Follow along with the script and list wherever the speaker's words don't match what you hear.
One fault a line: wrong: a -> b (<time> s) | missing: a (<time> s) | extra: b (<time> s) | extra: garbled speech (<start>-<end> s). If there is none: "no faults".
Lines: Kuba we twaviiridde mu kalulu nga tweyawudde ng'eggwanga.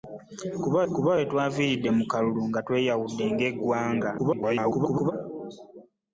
extra: kuba (0.9 s)
extra: garbled speech (4.2-5.1 s)